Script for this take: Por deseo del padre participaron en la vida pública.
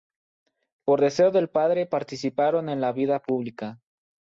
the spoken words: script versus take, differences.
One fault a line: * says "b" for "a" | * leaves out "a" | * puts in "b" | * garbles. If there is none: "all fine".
all fine